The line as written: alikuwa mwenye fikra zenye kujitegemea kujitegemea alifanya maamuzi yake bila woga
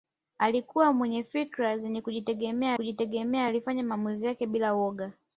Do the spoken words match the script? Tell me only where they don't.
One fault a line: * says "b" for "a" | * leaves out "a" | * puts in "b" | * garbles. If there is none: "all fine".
all fine